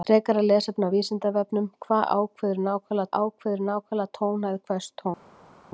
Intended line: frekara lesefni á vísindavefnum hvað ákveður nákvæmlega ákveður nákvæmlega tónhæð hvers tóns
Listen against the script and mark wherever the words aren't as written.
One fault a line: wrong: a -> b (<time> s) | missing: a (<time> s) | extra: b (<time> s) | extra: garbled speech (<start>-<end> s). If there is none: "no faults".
no faults